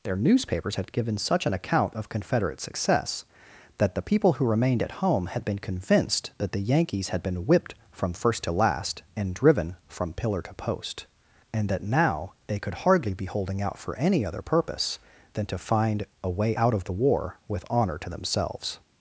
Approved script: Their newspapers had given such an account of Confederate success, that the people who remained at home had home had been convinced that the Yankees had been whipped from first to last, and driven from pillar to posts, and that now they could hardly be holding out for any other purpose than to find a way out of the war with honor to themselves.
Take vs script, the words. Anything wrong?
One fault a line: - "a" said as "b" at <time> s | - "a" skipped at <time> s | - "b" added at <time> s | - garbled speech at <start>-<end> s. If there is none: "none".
- "home had" skipped at 5.5 s
- "posts" said as "post" at 10.5 s